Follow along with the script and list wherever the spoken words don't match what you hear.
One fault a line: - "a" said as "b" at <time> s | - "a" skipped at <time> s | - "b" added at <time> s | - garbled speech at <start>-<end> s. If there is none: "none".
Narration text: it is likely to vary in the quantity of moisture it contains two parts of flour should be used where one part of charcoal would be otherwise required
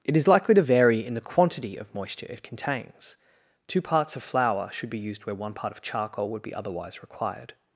none